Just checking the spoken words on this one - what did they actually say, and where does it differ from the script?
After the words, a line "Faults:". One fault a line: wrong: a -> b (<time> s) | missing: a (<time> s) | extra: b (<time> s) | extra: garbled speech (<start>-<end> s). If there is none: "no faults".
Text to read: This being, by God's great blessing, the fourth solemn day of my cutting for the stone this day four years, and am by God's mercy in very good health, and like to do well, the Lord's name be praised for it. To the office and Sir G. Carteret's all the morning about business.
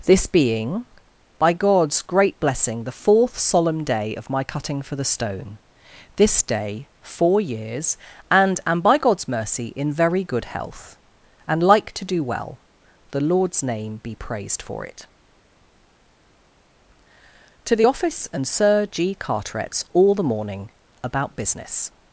This being, by God's great blessing, the fourth solemn day of my cutting for the stone this day four years, and am by God's mercy in very good health, and like to do well, the Lord's name be praised for it. To the office and Sir G. Carteret's all the morning about business.
Faults:
no faults